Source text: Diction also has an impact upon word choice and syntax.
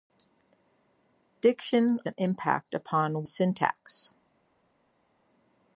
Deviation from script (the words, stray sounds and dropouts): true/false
true